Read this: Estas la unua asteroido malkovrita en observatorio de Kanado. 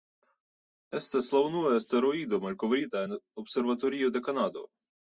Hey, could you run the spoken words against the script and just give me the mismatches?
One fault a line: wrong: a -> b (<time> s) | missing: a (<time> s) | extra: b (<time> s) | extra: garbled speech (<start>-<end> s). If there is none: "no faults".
no faults